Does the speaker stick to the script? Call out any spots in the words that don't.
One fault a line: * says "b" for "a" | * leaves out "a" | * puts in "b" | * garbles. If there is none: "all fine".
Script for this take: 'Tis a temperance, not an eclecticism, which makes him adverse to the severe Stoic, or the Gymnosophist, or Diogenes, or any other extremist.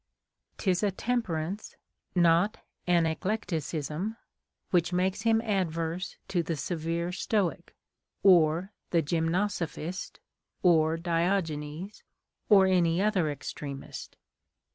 all fine